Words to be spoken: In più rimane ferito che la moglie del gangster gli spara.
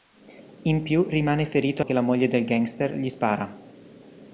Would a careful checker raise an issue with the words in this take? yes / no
no